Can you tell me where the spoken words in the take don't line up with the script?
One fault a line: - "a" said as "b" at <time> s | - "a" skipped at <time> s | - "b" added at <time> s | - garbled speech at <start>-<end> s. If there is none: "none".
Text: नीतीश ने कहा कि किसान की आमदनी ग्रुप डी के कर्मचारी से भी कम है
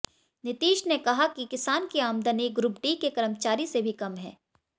none